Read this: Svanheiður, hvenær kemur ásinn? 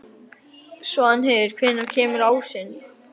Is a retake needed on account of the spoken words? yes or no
no